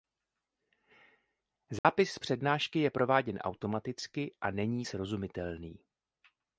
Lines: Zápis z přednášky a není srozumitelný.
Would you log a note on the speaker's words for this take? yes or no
yes